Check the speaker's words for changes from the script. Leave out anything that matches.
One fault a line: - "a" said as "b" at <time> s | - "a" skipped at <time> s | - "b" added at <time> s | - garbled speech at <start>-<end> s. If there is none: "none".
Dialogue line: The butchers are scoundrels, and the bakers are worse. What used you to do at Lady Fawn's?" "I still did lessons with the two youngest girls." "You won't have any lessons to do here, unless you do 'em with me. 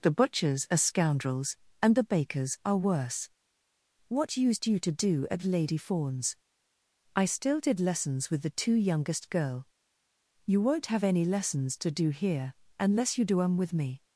- "girls" said as "girl" at 9.3 s